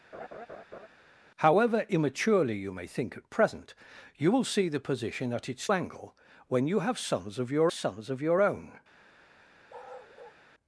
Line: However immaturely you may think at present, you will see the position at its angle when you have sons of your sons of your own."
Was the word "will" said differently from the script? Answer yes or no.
no